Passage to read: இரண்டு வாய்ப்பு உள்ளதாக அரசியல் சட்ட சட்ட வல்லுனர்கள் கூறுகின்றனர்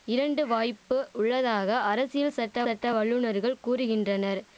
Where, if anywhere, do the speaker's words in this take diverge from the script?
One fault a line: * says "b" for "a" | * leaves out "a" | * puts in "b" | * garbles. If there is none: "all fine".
all fine